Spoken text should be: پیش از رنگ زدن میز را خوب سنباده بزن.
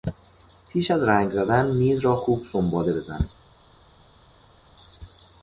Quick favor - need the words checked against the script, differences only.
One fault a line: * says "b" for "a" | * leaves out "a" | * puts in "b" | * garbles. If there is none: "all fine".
all fine